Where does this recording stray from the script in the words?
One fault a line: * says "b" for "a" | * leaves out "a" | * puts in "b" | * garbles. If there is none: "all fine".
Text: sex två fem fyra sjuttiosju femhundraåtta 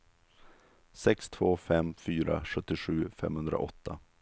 all fine